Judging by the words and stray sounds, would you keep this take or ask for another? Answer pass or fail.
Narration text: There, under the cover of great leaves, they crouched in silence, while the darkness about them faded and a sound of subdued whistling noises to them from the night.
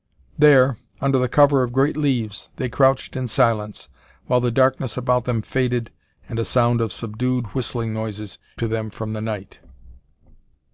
pass